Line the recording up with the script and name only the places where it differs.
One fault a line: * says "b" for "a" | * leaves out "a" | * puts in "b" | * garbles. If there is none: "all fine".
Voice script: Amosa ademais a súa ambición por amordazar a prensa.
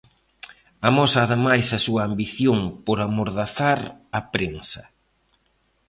all fine